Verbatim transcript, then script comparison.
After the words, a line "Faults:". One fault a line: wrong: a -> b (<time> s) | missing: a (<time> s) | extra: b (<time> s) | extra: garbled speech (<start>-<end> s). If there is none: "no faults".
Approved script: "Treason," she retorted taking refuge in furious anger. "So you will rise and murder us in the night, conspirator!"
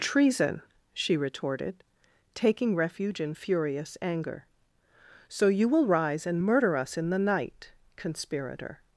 "Treason," she retorted taking refuge in furious anger. "So you will rise and murder us in the night, conspirator!"
Faults:
no faults